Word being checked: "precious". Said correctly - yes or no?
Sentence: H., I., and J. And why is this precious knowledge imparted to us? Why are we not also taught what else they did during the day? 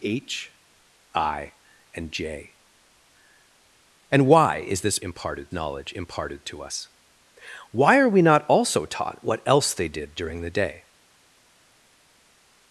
no